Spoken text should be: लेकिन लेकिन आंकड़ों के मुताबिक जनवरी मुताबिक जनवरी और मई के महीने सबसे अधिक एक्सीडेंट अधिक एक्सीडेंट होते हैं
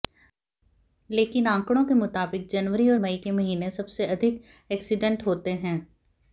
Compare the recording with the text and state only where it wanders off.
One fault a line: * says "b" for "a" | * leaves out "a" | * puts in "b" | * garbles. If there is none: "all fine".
* leaves out "लेकिन"
* leaves out "मुताबिक जनवरी"
* leaves out "अधिक एक्सीडेंट"